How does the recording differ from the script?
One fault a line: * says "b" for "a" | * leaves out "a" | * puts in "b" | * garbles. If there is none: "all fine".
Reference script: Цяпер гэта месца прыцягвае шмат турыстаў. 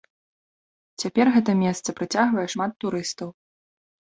all fine